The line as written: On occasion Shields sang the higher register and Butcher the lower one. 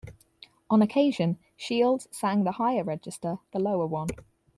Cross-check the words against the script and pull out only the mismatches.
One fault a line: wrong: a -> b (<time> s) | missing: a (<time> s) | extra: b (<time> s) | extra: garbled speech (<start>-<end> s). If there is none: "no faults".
missing: and Butcher (3.4 s)